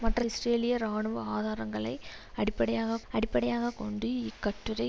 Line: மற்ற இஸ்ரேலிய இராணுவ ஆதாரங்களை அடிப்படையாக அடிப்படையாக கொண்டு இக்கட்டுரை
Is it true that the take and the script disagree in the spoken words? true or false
false